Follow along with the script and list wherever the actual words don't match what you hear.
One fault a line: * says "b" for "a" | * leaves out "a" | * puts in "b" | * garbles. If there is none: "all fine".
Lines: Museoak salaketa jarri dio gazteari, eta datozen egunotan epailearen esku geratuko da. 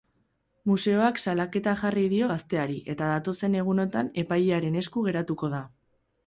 all fine